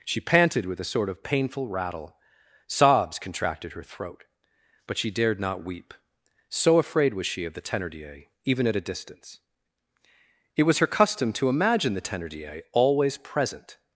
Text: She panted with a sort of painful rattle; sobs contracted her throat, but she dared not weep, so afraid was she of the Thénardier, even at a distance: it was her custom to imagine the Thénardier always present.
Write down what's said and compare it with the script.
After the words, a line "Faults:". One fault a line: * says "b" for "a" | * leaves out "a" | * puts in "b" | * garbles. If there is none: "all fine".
She panted with a sort of painful rattle; sobs contracted her throat, but she dared not weep, so afraid was she of the Thénardier, even at a distance: it was her custom to imagine the Thénardier always present.
Faults:
all fine